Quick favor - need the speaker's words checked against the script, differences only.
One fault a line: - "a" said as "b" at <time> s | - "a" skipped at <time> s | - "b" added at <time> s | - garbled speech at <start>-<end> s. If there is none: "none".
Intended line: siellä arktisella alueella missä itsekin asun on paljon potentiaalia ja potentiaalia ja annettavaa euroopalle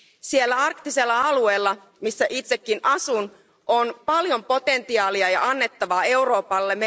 - "potentiaalia ja" skipped at 5.5 s